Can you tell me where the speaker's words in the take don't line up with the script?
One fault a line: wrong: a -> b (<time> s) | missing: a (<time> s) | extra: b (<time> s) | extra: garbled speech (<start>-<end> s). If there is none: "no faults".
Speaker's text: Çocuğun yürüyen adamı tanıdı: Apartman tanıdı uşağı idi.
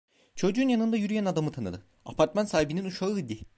extra: yanında (0.7 s)
wrong: tanıdı -> sahibinin (2.5 s)